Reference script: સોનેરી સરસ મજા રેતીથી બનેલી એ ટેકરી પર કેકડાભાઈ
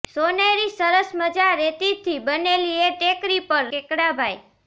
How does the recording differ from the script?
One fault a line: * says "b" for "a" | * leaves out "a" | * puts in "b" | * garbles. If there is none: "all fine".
all fine